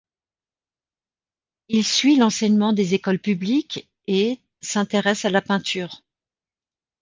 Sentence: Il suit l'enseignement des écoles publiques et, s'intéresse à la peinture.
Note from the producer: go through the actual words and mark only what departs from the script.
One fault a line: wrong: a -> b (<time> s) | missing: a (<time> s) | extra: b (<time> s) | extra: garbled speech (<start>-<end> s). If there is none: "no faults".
no faults